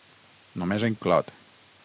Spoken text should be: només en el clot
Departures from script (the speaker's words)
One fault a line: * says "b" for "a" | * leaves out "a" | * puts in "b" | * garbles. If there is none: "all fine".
all fine